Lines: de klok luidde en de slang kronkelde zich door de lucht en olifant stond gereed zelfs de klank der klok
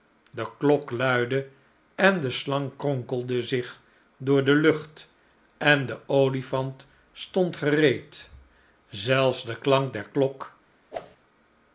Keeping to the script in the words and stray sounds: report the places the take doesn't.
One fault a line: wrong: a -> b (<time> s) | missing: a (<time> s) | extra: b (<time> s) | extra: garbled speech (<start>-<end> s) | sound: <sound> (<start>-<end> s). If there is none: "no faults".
extra: de (5.8 s)
sound: whoosh (10.9-11.2 s)